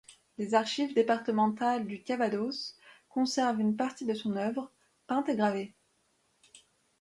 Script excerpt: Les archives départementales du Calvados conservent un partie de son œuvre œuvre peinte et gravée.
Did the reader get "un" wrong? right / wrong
wrong